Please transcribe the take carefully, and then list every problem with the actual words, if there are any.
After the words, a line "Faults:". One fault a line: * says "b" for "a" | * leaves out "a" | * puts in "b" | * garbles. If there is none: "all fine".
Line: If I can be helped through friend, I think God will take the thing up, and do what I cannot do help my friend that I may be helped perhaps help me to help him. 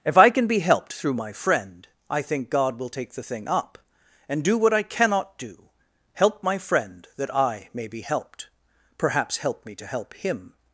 If I can be helped through my friend, I think God will take the thing up, and do what I cannot do help my friend that I may be helped perhaps help me to help him.
Faults:
* puts in "my"